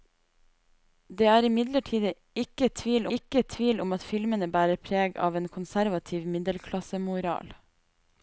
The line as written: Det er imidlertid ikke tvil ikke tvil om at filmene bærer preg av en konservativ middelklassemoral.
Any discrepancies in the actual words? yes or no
no